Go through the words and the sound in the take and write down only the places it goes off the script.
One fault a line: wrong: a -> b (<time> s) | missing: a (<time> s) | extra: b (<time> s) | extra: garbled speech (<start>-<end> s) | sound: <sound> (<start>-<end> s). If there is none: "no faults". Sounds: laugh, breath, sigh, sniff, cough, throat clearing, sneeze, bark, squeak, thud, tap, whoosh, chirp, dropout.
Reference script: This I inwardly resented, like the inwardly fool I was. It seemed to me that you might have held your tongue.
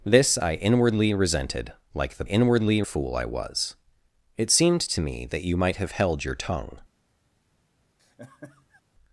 sound: laugh (8.0-8.8 s)